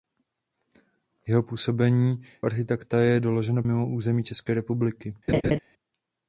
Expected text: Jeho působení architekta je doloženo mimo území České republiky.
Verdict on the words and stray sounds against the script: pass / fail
fail